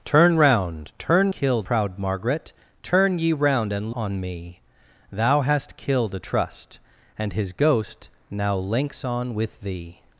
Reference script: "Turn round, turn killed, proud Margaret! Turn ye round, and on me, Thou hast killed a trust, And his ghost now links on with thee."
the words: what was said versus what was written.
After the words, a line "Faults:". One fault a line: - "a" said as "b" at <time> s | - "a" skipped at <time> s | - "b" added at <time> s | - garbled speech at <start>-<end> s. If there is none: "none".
"Turn round, turn killed, proud Margaret! Turn ye round, and on me, Thou hast killed a trust, And his ghost now links on with thee."
Faults:
none